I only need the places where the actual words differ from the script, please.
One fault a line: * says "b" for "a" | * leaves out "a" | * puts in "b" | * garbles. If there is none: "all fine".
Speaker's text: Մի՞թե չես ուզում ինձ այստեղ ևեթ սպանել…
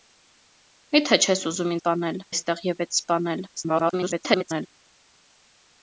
* says "սպանել" for "ինձ"
* garbles